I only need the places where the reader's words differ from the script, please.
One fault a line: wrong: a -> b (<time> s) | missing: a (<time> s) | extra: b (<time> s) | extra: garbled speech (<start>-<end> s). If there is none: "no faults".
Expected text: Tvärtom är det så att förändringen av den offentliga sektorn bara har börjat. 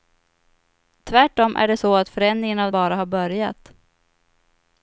missing: den offentliga sektorn (2.7 s)